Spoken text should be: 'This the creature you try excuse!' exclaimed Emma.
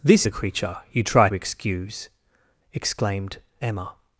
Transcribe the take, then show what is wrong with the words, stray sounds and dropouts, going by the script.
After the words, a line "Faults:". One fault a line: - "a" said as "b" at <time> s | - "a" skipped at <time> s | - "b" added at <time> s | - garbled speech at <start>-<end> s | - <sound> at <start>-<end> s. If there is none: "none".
'This the creature you try excuse!' exclaimed Emma.
Faults:
none